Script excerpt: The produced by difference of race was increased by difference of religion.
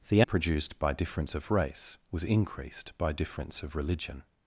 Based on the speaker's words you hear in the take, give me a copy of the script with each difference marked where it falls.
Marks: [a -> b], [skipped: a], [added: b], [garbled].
The produced by difference of race was increased by difference of religion.